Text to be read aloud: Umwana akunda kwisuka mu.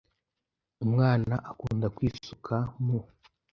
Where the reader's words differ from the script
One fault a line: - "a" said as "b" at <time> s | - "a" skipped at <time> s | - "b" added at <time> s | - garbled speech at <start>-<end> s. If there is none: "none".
none